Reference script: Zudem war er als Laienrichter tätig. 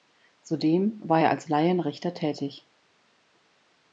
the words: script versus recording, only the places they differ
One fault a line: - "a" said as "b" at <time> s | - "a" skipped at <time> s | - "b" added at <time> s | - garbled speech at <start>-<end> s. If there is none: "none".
none